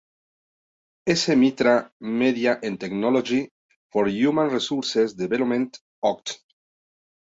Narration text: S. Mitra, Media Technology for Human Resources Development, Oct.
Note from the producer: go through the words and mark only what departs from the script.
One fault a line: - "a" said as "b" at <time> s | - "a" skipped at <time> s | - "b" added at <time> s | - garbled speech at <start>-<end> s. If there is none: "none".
- "and" added at 2.6 s